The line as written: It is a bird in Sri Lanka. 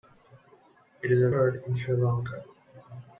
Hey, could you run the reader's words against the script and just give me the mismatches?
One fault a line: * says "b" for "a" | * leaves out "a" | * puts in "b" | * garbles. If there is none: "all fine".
all fine